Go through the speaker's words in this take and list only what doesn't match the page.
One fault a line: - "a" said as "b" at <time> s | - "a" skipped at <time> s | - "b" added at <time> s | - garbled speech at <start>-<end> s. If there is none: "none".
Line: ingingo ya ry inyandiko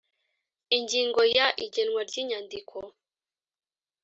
- "igenwa" added at 1.6 s